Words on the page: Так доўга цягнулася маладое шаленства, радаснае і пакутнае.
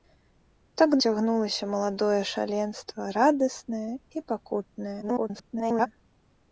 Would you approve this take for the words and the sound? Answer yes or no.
no